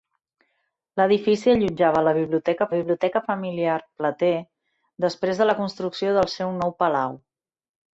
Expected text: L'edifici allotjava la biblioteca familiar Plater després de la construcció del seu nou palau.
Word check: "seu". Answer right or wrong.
right